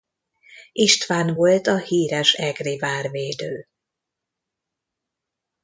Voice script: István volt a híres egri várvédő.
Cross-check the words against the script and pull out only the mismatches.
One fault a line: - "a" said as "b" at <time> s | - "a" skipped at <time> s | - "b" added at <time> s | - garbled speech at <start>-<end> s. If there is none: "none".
none